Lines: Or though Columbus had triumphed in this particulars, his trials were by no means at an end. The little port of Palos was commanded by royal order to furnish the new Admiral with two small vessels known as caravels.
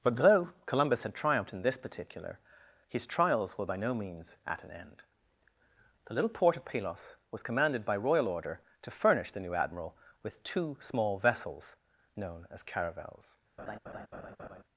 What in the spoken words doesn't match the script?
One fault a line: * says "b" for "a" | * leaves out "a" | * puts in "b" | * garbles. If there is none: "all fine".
* says "But" for "Or"
* says "particular" for "particulars"